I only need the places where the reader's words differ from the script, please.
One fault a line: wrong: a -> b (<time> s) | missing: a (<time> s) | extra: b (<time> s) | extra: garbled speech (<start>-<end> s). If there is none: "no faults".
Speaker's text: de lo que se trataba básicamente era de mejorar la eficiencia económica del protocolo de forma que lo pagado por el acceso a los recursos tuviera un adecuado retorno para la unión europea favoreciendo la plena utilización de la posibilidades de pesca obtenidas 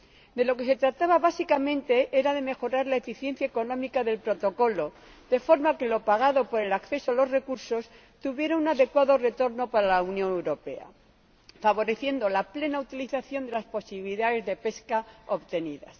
wrong: la -> las (13.5 s)